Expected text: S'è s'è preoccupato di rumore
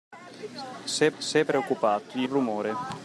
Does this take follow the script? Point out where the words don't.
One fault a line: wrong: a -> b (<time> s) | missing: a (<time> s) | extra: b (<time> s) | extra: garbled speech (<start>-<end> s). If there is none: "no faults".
no faults